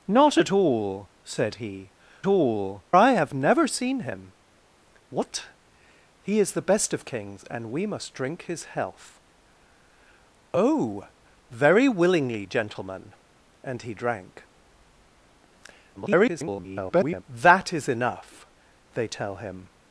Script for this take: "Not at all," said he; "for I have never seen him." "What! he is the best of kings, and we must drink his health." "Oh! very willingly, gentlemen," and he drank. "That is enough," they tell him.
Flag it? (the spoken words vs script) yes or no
yes